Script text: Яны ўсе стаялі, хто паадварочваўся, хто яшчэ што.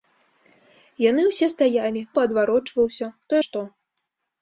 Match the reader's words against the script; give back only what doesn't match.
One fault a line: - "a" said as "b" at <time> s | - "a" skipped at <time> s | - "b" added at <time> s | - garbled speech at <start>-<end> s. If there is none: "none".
- "хто" skipped at 2.0 s
- "яшчэ" skipped at 3.3 s